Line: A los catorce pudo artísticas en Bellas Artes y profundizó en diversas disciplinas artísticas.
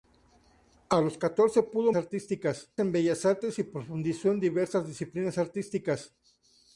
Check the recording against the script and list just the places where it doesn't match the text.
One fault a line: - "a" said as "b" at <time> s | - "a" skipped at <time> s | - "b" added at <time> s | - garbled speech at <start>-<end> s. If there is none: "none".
none